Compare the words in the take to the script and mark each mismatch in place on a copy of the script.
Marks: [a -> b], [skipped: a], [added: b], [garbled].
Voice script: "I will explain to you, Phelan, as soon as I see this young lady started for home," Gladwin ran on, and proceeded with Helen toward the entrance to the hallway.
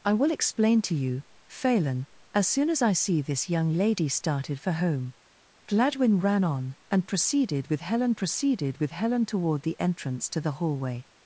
"I will explain to you, Phelan, as soon as I see this young lady started for home," Gladwin ran on, and proceeded with Helen [added: proceeded with Helen] toward the entrance to the hallway.